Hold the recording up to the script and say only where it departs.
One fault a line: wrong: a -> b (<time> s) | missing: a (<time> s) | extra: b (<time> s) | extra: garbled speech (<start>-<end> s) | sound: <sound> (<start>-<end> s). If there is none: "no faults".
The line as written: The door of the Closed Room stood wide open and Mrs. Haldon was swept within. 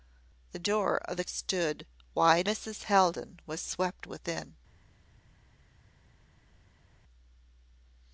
missing: Closed Room (1.2 s)
missing: open and (2.5 s)